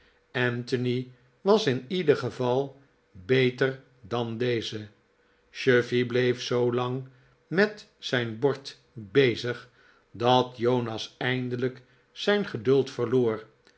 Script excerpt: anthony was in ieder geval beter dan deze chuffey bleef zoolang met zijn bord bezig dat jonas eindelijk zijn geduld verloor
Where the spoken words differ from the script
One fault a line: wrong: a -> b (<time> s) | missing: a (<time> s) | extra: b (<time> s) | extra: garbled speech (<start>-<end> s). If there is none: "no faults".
no faults